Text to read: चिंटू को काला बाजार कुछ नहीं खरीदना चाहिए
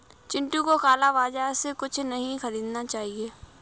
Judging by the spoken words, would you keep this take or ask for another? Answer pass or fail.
fail